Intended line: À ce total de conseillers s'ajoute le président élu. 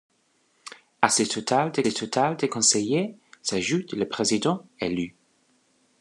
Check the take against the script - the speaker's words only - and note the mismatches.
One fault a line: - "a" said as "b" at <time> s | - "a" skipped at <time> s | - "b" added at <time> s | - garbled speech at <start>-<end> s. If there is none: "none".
- "total de" added at 1.9 s